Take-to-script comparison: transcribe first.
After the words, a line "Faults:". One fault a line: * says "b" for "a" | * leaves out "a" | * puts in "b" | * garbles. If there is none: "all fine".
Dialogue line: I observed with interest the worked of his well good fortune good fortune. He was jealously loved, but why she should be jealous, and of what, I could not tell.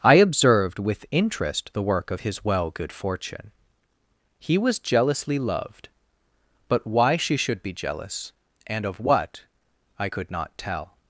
I observed with interest the work of his well good fortune. He was jealously loved, but why she should be jealous, and of what, I could not tell.
Faults:
* says "work" for "worked"
* leaves out "good fortune"